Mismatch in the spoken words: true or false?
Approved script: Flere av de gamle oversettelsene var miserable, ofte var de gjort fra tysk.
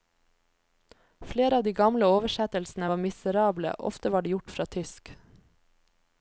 false